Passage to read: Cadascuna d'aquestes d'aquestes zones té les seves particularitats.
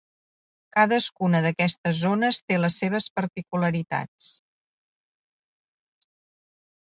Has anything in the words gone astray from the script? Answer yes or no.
yes